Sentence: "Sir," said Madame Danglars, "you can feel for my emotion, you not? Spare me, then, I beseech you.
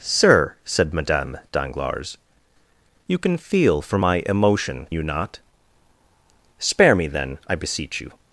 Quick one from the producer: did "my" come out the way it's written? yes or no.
yes